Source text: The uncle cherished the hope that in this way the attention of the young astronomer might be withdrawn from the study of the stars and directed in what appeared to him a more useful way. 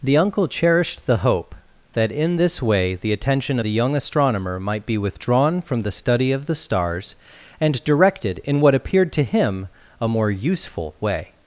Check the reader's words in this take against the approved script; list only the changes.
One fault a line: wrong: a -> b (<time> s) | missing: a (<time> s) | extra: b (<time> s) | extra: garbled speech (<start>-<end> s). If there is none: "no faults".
missing: of (3.6 s)